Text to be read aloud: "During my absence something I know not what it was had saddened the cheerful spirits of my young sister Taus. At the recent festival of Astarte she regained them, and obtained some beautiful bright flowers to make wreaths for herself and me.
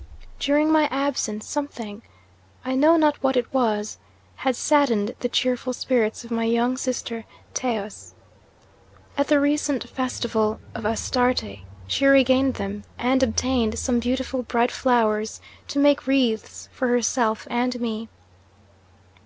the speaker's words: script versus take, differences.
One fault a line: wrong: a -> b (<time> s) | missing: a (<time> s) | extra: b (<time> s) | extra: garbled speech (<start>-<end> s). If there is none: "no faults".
no faults